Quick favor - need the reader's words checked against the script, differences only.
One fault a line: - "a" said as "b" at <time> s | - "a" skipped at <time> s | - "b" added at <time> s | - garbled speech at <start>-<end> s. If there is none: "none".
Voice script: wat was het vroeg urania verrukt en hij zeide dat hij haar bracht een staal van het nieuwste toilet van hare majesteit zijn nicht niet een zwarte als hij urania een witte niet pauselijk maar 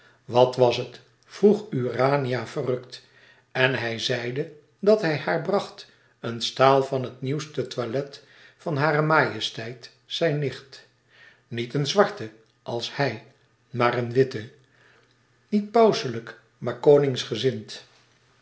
- "urania" said as "maar" at 13.7 s